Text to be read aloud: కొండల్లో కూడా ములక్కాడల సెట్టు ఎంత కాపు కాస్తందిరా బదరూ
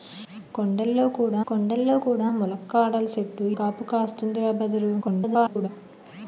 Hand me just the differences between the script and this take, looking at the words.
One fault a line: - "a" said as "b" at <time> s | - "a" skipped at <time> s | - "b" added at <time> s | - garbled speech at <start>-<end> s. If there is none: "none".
- "కొండల్లో కూడా" added at 1.5 s
- "ఎంత" skipped at 3.5 s
- garbled speech at 5.0-5.7 s